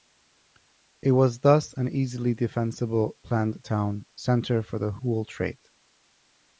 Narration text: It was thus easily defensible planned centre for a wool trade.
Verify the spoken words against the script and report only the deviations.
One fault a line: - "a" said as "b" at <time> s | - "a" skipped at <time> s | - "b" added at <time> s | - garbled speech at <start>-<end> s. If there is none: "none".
- "an" added at 1.7 s
- "town" added at 3.6 s
- "a" said as "the" at 4.8 s